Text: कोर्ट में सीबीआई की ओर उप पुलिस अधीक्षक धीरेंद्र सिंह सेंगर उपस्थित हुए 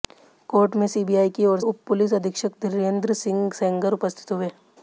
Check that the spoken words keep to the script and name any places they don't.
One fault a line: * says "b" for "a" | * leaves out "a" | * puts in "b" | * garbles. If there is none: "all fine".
all fine